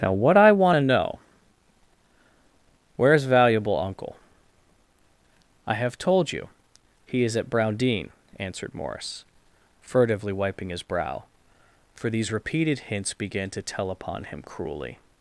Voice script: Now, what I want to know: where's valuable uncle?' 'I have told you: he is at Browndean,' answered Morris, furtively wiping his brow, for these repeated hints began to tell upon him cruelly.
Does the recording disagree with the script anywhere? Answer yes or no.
no